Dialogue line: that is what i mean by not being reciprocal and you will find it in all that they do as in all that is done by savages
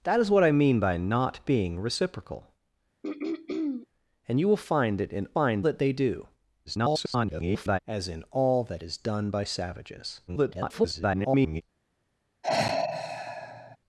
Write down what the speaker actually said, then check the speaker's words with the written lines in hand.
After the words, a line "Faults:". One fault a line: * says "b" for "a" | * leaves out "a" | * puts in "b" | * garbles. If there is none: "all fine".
that is what i mean by not being reciprocal and you will find it in find that they do [garbled] as in all that is done by savages [garbled]
Faults:
* says "find" for "all"
* garbles
* garbles